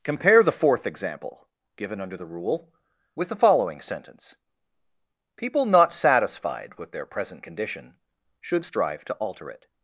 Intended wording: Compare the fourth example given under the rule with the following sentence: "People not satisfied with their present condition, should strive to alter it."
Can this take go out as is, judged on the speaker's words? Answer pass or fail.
pass